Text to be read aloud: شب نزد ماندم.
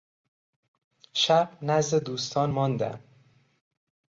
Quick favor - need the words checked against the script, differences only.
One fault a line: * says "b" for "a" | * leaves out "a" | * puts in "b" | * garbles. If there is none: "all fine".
* puts in "دوستان"